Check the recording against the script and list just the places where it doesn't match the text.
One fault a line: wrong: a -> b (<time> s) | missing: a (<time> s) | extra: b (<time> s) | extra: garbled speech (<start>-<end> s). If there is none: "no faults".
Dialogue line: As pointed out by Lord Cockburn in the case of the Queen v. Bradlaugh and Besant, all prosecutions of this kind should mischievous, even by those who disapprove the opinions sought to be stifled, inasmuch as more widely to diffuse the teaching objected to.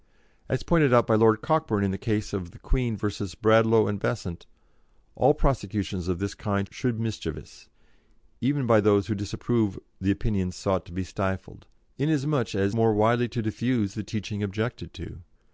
no faults